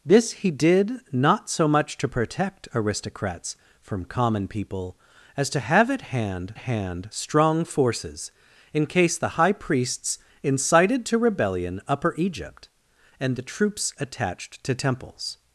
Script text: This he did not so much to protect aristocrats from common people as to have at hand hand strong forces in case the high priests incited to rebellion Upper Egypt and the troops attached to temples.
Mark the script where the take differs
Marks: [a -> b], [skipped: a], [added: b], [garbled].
This he did not so much to protect aristocrats from common people as to have at hand hand strong forces in case the high priests incited to rebellion Upper Egypt and the troops attached to temples.